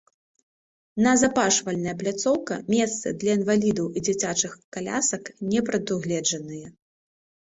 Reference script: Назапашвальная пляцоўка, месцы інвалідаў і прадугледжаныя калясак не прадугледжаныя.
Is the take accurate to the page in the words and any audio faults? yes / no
no